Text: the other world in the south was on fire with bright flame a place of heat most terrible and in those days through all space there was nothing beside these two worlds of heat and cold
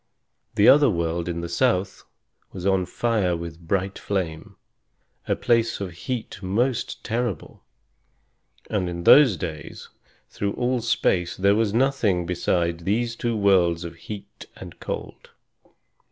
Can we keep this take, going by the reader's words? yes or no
yes